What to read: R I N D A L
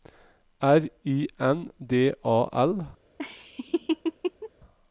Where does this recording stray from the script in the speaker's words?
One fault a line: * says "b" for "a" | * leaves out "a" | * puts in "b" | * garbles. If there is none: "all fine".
all fine